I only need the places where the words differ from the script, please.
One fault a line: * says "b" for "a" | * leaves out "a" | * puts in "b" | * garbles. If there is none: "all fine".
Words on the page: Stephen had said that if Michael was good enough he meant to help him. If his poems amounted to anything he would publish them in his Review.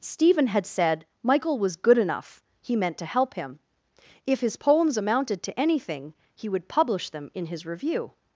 * leaves out "that if"